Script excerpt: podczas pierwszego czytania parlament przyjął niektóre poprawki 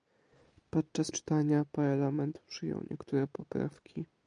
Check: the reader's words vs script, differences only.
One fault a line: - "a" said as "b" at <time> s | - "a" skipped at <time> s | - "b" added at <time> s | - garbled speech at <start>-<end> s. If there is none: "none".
- "pierwszego" skipped at 1.1 s